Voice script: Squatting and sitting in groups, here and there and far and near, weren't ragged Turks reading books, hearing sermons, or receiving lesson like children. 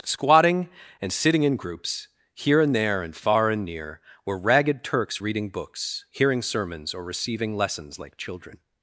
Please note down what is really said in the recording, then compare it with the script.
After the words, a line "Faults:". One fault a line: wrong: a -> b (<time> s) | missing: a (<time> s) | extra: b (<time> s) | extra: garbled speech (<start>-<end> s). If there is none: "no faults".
Squatting and sitting in groups, here and there and far and near, were ragged Turks reading books, hearing sermons, or receiving lessons like children.
Faults:
wrong: weren't -> were (4.2 s)
wrong: lesson -> lessons (7.6 s)